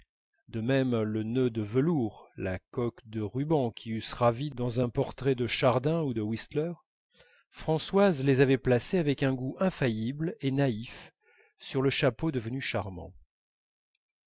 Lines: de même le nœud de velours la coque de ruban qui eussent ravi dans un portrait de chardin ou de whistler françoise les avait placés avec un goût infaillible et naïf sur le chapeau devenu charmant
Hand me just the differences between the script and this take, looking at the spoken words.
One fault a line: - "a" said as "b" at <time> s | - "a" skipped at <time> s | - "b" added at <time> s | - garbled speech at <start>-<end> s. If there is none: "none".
none